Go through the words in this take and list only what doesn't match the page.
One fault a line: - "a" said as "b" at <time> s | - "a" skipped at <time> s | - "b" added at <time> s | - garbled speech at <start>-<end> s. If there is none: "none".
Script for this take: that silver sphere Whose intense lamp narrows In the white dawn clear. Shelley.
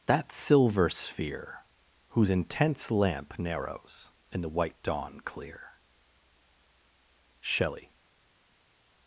none